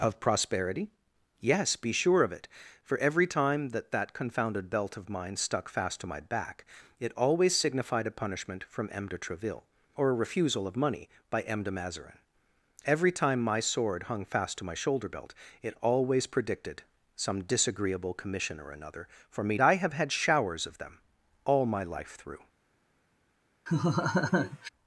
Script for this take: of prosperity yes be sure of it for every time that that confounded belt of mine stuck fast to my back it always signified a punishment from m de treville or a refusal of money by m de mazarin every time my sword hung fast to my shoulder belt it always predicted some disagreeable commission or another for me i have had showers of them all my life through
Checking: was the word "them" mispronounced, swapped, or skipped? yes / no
no